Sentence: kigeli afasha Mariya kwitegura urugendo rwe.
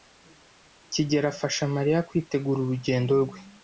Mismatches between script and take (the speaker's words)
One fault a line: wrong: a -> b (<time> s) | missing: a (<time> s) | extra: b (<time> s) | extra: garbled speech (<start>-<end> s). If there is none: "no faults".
no faults